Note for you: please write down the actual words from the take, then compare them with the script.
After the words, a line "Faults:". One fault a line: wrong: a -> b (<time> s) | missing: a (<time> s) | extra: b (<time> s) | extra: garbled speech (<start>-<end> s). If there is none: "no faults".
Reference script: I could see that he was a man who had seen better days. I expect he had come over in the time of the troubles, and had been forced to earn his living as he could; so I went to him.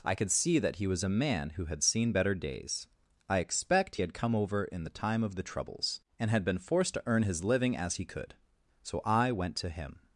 I could see that he was a man who had seen better days. I expect he had come over in the time of the troubles, and had been forced to earn his living as he could; so I went to him.
Faults:
no faults